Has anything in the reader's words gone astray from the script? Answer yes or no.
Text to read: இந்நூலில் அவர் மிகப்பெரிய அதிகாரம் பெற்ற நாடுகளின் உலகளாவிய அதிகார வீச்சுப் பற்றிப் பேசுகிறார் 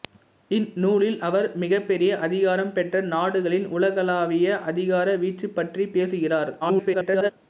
yes